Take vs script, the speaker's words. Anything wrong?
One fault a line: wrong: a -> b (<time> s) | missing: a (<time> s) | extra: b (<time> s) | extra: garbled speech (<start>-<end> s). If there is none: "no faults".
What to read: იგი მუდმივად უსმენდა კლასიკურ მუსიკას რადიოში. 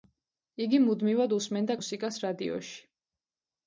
missing: კლასიკურ (1.8 s)